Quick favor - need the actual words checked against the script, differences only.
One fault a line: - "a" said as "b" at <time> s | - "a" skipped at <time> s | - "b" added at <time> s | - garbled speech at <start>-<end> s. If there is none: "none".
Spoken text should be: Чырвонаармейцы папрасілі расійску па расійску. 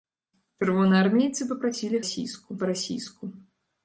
none